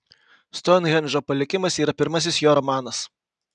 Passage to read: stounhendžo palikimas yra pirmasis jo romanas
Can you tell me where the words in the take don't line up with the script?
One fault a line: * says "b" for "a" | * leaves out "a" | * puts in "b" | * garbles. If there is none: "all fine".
all fine